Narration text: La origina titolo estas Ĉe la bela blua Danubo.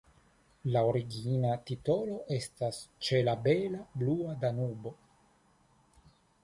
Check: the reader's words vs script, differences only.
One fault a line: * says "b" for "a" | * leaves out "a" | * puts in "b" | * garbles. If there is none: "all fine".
all fine